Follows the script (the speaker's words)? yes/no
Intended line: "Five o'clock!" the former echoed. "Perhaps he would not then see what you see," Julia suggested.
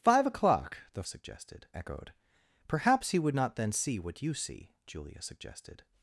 no